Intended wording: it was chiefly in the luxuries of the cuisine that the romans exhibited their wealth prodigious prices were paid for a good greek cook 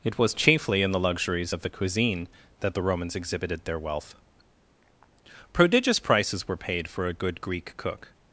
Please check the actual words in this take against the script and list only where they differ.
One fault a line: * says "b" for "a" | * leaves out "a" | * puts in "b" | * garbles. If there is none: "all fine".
all fine